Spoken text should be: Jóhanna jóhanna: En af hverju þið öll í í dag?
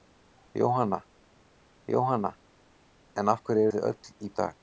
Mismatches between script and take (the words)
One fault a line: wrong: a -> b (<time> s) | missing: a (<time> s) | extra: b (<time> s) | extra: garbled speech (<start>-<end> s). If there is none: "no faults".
no faults